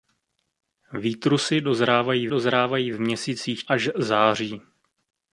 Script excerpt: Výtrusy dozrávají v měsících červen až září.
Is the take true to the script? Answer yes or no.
no